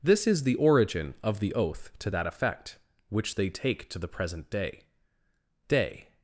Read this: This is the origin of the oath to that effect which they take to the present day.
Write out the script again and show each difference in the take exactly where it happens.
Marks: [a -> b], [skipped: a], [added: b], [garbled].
This is the origin of the oath to that effect which they take to the present day. [added: day]